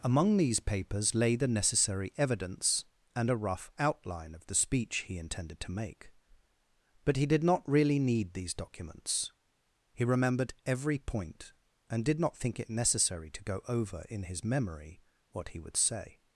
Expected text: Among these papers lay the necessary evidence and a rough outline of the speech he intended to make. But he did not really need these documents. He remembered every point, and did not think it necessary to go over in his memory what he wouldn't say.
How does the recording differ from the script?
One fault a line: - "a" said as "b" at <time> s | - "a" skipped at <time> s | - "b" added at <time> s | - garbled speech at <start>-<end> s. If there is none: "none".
- "wouldn't" said as "would" at 15.6 s